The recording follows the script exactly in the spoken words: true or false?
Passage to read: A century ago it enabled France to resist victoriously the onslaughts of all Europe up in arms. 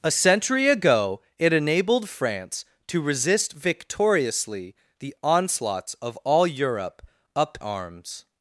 false